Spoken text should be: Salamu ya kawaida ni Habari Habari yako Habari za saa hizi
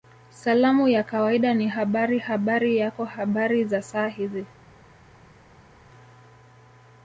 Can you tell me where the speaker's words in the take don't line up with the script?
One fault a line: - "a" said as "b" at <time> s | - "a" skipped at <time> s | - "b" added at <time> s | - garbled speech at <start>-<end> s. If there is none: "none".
none